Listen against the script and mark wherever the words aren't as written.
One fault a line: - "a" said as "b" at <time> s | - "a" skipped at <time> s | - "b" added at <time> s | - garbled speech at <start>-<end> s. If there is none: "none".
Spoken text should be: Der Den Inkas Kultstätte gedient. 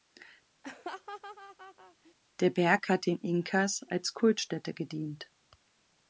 - "Berg hat" added at 2.5 s
- "als" added at 3.9 s